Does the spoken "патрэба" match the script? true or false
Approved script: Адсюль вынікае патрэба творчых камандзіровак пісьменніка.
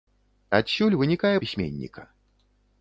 false